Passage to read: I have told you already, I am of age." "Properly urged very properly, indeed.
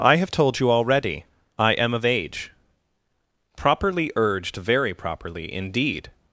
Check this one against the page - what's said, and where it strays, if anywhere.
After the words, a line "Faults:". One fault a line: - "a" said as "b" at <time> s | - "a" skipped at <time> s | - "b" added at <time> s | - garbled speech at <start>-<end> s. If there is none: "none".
I have told you already, I am of age." "Properly urged very properly, indeed.
Faults:
none